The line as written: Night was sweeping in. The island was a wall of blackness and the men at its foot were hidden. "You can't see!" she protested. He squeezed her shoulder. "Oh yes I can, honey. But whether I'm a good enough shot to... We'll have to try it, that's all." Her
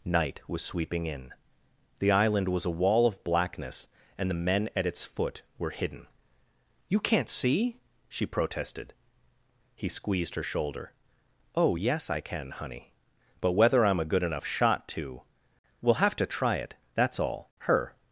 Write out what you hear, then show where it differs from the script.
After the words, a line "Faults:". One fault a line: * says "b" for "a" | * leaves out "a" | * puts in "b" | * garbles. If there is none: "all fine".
Night was sweeping in. The island was a wall of blackness and the men at its foot were hidden. "You can't see!" she protested. He squeezed her shoulder. "Oh yes I can, honey. But whether I'm a good enough shot to... We'll have to try it, that's all." Her
Faults:
all fine